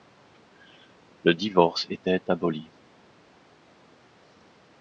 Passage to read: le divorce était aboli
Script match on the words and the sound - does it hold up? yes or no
yes